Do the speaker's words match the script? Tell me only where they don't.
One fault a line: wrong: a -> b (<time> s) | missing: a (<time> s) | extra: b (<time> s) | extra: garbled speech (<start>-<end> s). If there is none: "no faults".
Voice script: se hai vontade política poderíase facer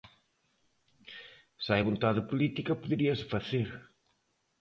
no faults